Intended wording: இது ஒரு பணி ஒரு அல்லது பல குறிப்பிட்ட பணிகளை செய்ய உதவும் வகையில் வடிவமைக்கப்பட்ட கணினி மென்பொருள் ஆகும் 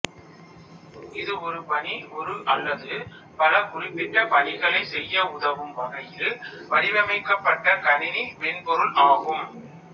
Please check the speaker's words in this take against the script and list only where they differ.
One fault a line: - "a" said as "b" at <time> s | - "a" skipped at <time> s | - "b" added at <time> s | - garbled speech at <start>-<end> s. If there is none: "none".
none